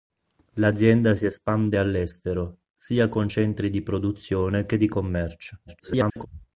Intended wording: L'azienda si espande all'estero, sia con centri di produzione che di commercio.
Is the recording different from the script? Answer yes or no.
yes